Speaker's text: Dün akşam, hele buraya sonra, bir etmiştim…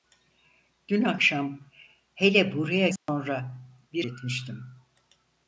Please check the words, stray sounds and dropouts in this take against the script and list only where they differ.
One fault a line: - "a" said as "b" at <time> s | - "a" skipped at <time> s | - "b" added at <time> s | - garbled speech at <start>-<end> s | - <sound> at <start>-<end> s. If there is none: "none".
- dropout at 3.0-3.1 s